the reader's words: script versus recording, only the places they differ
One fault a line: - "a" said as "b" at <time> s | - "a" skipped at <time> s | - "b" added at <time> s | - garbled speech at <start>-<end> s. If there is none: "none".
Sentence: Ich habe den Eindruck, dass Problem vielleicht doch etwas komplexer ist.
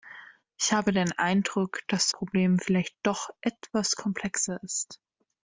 none